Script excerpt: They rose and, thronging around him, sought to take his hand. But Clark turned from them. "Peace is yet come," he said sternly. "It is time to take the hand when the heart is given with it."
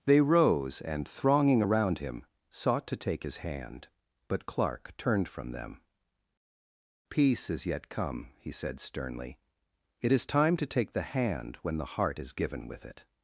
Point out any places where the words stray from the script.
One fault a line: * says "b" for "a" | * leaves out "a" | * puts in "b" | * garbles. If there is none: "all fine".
all fine